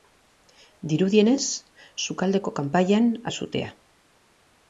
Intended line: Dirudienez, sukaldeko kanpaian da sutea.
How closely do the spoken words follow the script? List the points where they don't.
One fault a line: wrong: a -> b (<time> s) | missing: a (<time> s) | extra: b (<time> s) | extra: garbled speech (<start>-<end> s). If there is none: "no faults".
no faults